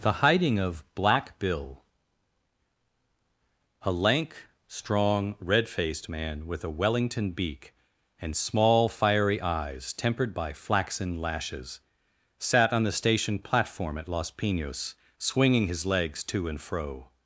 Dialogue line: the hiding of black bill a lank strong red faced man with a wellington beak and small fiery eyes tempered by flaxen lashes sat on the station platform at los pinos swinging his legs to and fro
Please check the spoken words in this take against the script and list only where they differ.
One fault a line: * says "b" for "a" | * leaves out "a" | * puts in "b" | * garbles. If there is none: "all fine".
all fine